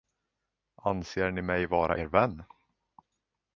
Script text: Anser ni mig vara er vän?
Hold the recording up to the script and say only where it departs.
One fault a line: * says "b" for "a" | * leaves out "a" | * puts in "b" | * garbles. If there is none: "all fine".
all fine